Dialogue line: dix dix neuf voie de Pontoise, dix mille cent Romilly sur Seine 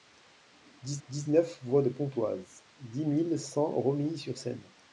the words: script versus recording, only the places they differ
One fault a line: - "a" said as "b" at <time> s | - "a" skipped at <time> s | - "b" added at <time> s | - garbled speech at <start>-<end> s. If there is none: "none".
none